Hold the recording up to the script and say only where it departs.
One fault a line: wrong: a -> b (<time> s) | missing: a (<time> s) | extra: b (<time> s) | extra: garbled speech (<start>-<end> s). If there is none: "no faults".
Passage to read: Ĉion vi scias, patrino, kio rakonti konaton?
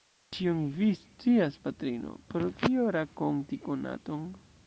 extra: pro (2.3 s)